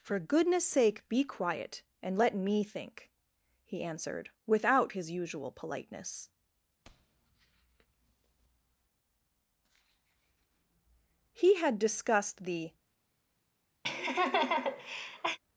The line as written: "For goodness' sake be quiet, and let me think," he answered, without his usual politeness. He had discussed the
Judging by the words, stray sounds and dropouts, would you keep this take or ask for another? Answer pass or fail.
fail